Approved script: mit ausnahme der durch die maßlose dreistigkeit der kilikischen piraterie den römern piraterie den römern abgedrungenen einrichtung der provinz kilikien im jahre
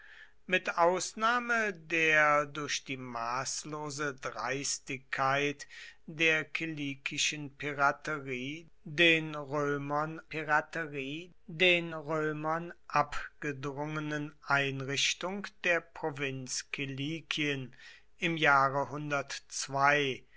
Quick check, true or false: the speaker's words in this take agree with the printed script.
true